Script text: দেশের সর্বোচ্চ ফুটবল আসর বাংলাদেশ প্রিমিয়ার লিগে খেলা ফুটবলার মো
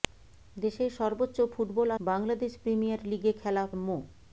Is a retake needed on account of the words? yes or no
yes